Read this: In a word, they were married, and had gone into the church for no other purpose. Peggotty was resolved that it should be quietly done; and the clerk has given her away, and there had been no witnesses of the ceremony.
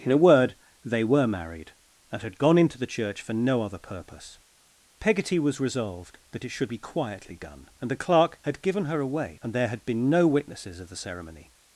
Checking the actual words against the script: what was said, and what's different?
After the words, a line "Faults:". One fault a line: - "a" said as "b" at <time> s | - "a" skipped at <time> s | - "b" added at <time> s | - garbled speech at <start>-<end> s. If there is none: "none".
In a word, they were married, and had gone into the church for no other purpose. Peggotty was resolved that it should be quietly done; and the clerk had given her away, and there had been no witnesses of the ceremony.
Faults:
- "has" said as "had" at 8.4 s